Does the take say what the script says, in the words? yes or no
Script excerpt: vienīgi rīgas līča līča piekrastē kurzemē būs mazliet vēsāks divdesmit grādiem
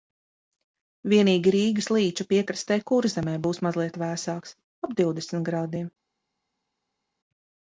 no